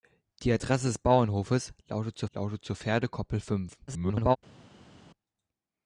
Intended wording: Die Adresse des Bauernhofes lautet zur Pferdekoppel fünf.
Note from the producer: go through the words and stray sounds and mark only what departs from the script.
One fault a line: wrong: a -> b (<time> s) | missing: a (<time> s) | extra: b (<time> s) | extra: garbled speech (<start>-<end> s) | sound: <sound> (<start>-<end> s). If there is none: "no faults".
extra: lautet zur (2.3 s)
extra: garbled speech (3.9-4.4 s)